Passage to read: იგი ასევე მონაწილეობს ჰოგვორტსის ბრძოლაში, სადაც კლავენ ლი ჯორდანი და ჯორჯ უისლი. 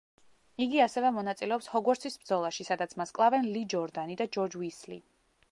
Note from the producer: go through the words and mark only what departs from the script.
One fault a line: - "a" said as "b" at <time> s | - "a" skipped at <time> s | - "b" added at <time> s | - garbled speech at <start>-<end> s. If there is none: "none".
- "მას" added at 3.0 s